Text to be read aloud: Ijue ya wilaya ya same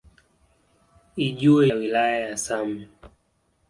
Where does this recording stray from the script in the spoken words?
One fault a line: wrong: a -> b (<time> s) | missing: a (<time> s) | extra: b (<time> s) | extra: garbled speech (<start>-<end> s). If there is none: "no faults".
no faults